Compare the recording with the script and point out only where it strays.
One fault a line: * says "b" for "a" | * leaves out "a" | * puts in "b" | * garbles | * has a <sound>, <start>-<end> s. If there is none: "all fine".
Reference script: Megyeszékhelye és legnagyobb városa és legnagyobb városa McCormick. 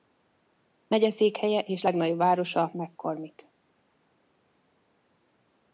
* leaves out "és legnagyobb városa"